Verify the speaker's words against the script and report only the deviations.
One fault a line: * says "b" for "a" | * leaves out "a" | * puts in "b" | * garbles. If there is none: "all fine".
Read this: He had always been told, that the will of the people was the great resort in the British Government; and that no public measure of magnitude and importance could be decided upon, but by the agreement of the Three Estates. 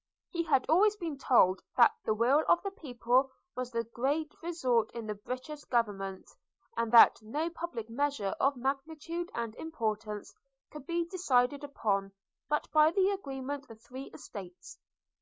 * leaves out "of"